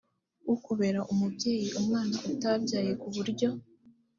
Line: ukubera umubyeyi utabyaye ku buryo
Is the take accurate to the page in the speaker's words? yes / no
no